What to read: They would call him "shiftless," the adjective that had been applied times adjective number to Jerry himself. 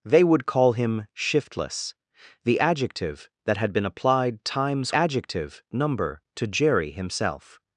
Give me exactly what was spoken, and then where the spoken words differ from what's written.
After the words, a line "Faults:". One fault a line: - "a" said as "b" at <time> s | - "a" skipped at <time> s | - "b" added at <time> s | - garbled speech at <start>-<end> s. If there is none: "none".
They would call him "shiftless," the adjective that had been applied times adjective number to Jerry himself.
Faults:
none